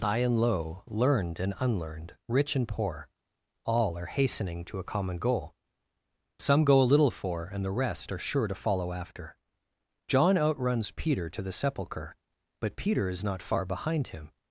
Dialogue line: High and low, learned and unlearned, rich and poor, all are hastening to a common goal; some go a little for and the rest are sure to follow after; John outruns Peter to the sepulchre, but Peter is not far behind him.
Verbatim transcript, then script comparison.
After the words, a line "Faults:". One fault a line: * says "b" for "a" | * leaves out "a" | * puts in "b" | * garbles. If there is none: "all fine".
High and low, learned and unlearned, rich and poor, all are hastening to a common goal; some go a little for and the rest are sure to follow after; John outruns Peter to the sepulchre, but Peter is not far behind him.
Faults:
all fine